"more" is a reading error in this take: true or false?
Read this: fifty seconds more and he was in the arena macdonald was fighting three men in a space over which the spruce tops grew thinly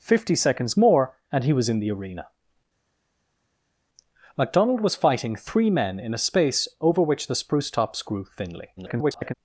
false